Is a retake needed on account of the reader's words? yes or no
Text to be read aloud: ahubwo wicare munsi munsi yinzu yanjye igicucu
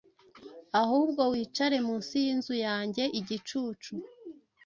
yes